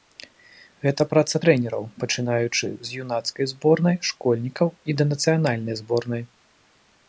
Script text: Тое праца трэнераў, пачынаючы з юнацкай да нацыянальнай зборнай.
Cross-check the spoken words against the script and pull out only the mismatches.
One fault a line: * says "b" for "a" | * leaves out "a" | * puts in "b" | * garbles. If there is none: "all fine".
* says "Гэта" for "Тое"
* puts in "зборнай школьнікаў і"